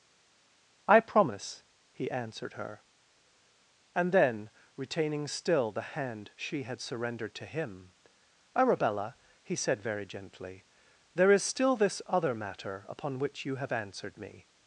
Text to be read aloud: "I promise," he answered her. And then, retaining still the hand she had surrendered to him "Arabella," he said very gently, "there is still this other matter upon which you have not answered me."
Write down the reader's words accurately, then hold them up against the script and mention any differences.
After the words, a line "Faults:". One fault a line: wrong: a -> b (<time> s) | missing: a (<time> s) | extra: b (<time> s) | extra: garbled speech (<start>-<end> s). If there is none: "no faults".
"I promise," he answered her. And then, retaining still the hand she had surrendered to him "Arabella," he said very gently, "there is still this other matter upon which you have answered me."
Faults:
missing: not (13.7 s)